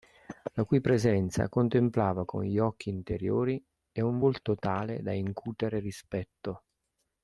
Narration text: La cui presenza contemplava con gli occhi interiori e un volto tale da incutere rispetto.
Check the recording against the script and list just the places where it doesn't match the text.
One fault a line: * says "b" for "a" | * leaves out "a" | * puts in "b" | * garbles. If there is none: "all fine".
all fine